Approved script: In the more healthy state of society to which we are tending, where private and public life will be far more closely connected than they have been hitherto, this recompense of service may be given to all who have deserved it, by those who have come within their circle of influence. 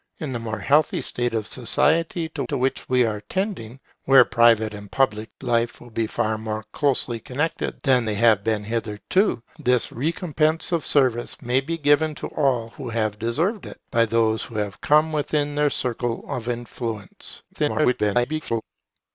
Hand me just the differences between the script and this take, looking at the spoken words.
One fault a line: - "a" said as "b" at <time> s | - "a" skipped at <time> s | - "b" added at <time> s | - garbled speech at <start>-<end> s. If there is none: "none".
- "to" added at 2.4 s
- garbled speech at 17.5-18.6 s